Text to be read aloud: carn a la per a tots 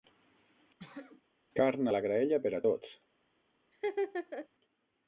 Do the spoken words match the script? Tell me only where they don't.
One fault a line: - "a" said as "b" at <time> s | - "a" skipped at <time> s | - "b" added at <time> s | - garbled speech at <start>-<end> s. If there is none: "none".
- "graella" added at 2.1 s